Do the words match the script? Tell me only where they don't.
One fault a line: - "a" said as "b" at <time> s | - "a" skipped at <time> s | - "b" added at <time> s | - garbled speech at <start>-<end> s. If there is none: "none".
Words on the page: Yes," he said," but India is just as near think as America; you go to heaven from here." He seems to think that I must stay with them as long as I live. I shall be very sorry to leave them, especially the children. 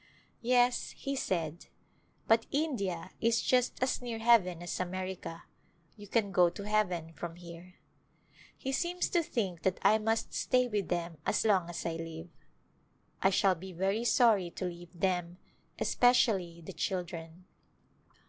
- "think" said as "heaven" at 4.2 s
- "can" added at 6.1 s